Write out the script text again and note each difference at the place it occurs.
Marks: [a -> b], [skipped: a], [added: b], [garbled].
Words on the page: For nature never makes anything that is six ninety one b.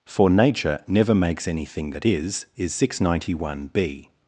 For nature never makes anything that is [added: is] six ninety one b.